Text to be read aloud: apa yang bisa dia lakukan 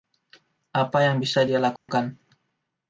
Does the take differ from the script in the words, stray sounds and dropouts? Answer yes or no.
yes